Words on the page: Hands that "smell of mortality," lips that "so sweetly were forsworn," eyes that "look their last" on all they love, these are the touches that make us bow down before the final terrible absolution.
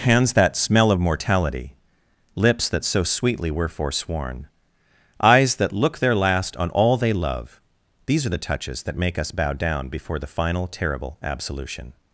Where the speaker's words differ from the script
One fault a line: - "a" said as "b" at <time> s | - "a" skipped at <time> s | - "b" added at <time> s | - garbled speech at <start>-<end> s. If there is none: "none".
none